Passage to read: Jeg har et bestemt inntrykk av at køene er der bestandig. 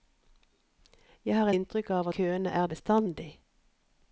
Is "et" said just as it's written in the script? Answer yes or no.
no